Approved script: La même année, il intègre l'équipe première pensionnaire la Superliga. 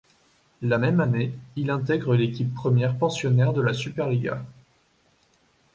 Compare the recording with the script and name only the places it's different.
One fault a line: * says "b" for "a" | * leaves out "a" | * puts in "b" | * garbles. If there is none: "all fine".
* puts in "de"